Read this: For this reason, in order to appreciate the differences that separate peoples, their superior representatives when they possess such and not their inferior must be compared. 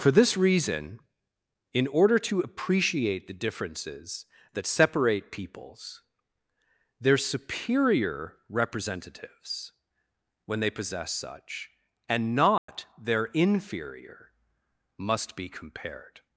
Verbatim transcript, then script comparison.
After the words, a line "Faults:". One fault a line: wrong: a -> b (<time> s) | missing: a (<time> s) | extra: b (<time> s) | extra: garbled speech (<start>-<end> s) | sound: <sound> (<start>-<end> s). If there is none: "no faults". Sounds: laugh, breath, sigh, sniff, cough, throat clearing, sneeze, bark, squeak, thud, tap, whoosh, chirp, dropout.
For this reason, in order to appreciate the differences that separate peoples, their superior representatives when they possess such and not their inferior must be compared.
Faults:
sound: dropout (12.6-12.7 s)